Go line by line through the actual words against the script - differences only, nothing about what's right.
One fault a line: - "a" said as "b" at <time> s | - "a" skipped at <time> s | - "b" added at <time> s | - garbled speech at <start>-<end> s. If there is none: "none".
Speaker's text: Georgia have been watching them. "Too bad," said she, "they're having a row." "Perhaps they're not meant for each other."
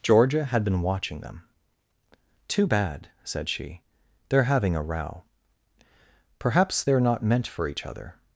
- "have" said as "had" at 0.5 s